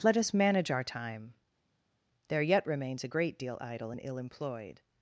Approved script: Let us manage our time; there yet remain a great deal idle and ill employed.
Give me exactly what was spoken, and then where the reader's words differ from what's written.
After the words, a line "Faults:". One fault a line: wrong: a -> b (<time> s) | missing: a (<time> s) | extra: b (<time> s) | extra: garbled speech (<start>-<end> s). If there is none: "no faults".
Let us manage our time; there yet remains a great deal idle and ill employed.
Faults:
wrong: remain -> remains (2.7 s)